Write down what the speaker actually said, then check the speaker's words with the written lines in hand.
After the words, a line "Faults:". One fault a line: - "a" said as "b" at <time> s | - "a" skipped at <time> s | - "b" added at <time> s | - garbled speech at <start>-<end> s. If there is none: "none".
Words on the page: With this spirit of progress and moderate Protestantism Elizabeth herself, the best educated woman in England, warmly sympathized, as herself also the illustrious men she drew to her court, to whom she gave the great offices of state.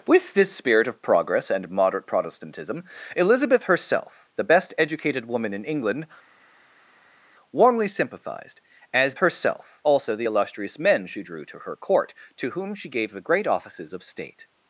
With this spirit of progress and moderate Protestantism Elizabeth herself, the best educated woman in England, warmly sympathized, as herself also the illustrious men she drew to her court, to whom she gave the great offices of state.
Faults:
none